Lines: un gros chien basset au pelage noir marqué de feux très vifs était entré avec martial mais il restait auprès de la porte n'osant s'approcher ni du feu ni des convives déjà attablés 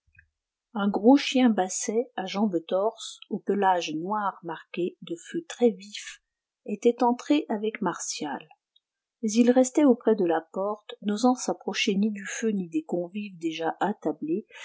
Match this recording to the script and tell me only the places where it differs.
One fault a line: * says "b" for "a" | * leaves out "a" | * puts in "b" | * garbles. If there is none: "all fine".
* puts in "à jambes torses"